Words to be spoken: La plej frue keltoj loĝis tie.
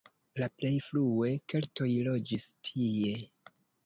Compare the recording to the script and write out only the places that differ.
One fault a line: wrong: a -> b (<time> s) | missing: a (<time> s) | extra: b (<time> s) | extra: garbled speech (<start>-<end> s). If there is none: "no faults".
no faults